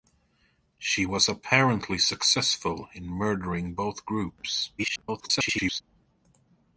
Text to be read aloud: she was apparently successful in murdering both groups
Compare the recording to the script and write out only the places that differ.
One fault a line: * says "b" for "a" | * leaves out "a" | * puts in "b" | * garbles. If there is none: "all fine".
* garbles